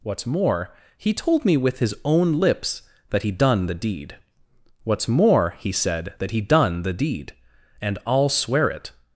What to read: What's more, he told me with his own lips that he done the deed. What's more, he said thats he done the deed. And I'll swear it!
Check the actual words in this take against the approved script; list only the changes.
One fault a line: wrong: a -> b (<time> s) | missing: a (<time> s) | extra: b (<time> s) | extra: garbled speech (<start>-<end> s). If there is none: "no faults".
wrong: thats -> that (6.2 s)